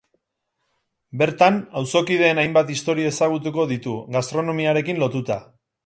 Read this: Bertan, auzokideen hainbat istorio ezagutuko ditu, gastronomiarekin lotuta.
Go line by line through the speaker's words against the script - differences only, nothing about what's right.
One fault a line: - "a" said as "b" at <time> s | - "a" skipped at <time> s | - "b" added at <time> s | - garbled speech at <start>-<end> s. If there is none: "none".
none